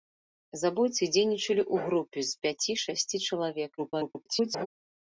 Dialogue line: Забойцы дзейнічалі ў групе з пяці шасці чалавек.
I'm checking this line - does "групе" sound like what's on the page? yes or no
yes